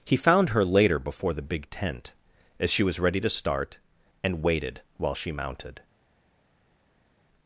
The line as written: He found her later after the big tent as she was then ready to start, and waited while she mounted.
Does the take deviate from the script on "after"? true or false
true